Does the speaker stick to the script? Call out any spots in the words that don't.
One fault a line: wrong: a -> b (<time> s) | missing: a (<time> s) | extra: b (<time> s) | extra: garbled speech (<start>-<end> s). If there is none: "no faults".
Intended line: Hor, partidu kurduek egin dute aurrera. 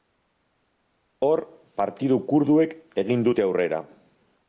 no faults